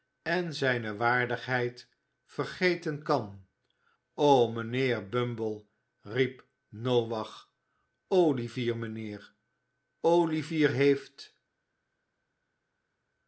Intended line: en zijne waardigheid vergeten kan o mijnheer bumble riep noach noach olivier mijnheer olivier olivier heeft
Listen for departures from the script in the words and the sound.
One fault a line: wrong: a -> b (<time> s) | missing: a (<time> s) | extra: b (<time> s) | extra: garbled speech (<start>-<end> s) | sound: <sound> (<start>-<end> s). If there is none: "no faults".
missing: noach (7.5 s)
missing: olivier (10.7 s)